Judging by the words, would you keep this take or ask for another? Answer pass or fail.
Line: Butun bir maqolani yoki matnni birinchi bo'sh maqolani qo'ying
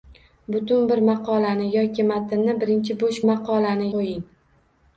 pass